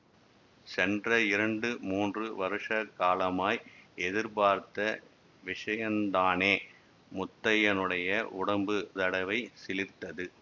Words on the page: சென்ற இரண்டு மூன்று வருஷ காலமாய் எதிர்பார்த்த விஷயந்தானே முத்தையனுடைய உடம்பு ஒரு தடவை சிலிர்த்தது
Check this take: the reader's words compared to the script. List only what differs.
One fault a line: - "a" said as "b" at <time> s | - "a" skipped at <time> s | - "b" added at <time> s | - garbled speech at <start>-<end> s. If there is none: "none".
- "ஒரு" skipped at 8.8 s